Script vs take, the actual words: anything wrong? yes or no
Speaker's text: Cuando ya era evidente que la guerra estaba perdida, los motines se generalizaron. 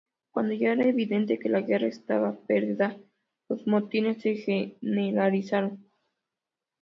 no